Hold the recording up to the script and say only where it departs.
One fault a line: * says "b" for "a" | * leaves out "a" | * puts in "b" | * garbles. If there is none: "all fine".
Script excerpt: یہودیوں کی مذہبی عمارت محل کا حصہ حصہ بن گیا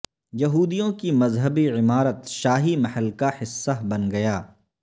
* puts in "شاہی"
* leaves out "حصہ"